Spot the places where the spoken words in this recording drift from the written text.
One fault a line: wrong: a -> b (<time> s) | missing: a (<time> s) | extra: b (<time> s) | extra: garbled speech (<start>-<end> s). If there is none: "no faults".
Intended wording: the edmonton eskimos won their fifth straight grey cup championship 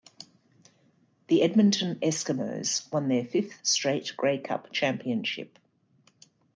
no faults